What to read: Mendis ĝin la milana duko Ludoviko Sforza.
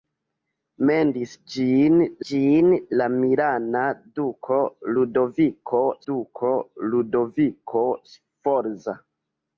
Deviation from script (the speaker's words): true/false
true